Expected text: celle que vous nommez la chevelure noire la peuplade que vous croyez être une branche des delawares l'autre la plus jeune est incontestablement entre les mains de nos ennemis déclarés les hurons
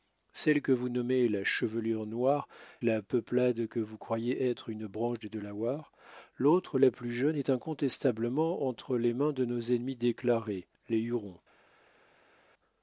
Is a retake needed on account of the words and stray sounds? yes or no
no